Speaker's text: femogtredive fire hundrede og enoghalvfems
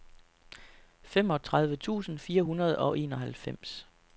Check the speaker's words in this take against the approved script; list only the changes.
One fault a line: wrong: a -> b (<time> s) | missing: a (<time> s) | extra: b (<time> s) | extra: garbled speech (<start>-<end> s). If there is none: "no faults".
extra: tusind (1.8 s)